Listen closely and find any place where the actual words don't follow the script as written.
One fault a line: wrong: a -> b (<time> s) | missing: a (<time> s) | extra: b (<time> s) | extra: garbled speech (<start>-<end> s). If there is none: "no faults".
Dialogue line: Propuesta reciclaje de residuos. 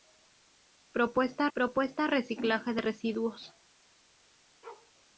extra: propuesta (1.5 s)